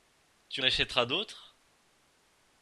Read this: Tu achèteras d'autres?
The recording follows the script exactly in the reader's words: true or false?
true